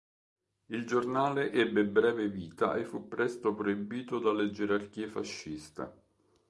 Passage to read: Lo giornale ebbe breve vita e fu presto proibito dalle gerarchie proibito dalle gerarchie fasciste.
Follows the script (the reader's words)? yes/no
no